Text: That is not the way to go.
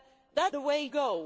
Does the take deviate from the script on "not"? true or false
true